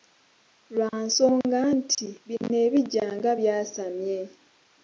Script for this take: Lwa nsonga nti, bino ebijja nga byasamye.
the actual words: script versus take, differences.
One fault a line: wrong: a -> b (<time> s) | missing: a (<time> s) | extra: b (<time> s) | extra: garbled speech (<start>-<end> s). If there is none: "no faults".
no faults